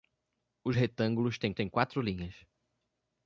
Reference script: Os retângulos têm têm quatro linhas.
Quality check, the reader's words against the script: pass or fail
pass